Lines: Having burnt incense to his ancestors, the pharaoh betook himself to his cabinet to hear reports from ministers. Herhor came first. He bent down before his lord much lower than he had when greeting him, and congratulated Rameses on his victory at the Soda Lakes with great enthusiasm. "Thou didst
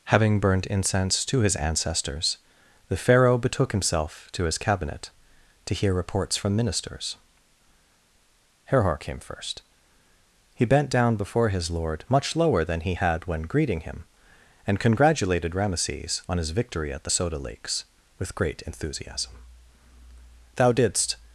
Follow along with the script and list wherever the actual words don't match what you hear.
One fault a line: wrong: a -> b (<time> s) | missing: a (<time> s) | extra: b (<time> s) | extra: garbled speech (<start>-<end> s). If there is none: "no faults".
no faults